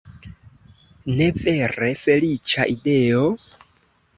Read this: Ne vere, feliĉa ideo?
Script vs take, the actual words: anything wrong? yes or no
no